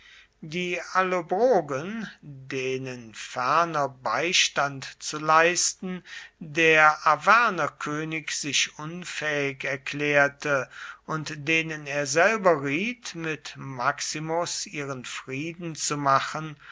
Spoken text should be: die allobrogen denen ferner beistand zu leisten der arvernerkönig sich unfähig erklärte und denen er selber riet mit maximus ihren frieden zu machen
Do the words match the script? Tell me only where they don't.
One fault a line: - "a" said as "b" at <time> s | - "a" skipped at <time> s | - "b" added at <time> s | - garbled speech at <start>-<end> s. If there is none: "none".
none